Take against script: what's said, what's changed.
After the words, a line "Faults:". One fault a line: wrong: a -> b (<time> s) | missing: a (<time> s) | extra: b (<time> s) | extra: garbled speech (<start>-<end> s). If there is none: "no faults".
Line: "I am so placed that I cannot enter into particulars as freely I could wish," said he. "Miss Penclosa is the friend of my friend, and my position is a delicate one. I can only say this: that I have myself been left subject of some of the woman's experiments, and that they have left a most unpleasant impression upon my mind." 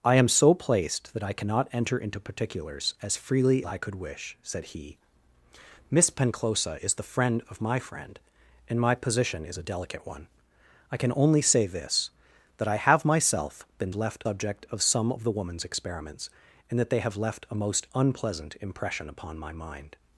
"I am so placed that I cannot enter into particulars as freely I could wish," said he. "Miss Penclosa is the friend of my friend, and my position is a delicate one. I can only say this: that I have myself been left subject of some of the woman's experiments, and that they have left a most unpleasant impression upon my mind."
Faults:
no faults